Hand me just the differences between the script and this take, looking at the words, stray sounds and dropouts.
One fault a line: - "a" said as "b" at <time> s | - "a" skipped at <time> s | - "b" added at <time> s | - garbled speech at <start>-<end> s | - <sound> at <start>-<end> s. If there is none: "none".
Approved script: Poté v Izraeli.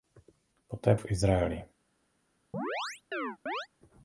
- chirp at 2.5-3.7 s